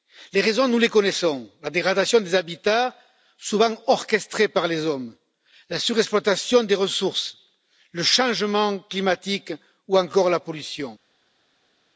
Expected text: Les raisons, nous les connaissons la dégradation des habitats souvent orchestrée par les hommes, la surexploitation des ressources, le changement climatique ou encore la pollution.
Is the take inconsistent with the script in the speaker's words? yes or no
no